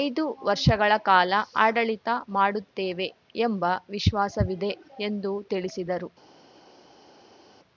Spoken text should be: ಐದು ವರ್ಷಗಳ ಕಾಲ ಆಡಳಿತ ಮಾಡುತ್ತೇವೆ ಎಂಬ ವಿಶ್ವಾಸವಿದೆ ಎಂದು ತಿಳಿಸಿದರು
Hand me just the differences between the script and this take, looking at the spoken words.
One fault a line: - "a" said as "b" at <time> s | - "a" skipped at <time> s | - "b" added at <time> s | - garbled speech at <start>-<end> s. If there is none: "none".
none